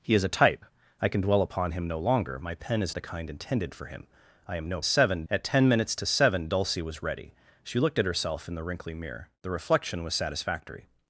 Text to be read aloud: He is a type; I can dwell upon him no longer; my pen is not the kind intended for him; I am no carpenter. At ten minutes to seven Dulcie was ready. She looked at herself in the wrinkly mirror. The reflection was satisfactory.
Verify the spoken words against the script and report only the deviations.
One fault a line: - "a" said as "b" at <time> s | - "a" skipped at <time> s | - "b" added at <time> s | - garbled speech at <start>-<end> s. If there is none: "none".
- "not" skipped at 3.0 s
- "carpenter" said as "seven" at 4.8 s